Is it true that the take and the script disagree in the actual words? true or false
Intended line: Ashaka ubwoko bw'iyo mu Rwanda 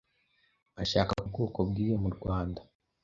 false